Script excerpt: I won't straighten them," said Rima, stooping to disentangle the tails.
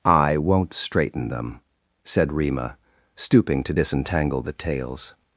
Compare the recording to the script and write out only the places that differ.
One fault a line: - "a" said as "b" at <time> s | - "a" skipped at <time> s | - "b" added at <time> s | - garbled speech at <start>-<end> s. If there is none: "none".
none